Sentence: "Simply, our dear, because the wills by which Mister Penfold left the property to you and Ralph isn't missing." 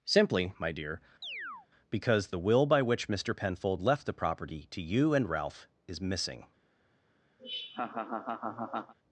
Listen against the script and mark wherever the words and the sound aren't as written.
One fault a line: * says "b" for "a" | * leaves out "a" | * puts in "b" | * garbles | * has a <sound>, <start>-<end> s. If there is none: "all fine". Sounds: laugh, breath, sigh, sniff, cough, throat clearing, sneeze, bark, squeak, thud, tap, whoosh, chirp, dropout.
* says "my" for "our"
* has a chirp, 1.2-1.7 s
* says "will" for "wills"
* says "is" for "isn't"
* has a laugh, 7.4-8.9 s